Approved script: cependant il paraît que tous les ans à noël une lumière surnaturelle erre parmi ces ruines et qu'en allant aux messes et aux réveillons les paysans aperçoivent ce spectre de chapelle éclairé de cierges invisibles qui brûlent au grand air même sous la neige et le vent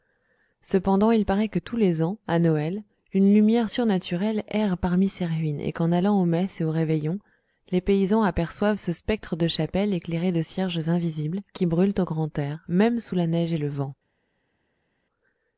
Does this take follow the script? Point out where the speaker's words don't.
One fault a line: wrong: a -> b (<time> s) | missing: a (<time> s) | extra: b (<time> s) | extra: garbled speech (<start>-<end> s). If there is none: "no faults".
no faults